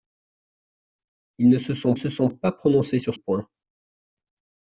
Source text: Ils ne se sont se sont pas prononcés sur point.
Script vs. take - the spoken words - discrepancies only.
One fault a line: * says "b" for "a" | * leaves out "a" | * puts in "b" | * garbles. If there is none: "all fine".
all fine